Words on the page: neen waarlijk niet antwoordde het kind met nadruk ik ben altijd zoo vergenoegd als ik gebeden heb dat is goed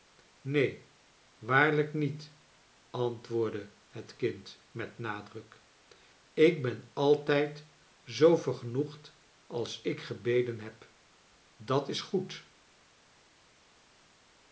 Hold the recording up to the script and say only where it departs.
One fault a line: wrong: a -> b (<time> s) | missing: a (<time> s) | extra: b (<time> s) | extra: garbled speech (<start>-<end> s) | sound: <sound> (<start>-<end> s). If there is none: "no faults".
no faults